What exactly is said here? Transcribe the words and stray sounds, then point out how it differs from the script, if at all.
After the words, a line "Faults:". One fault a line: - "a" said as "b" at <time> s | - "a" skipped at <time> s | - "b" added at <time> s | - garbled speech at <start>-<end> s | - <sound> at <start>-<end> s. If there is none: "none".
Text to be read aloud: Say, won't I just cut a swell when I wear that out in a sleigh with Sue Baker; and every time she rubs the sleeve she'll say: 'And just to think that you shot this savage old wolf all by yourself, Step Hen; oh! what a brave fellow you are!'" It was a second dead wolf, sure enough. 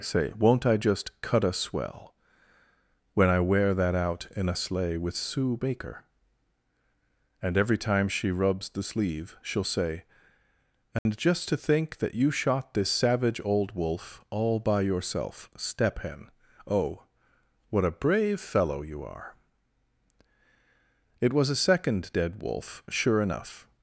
Say, won't I just cut a swell when I wear that out in a sleigh with Sue Baker; and every time she rubs the sleeve she'll say: 'And just to think that you shot this savage old wolf all by yourself, Step Hen; oh! what a brave fellow you are!'" It was a second dead wolf, sure enough.
Faults:
- dropout at 11.0-11.1 s